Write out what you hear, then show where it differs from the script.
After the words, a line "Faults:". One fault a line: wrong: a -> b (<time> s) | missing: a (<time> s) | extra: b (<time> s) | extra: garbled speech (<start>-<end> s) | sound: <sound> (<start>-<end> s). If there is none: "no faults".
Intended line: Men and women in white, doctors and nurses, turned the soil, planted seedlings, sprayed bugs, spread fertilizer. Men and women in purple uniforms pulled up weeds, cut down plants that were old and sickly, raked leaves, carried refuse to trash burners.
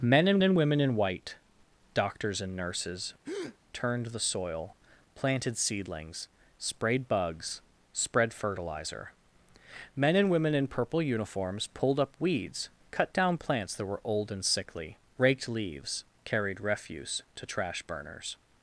Men and and women in white, doctors and nurses, turned the soil, planted seedlings, sprayed bugs, spread fertilizer. Men and women in purple uniforms pulled up weeds, cut down plants that were old and sickly, raked leaves, carried refuse to trash burners.
Faults:
extra: and (0.4 s)
sound: breath (3.2-3.6 s)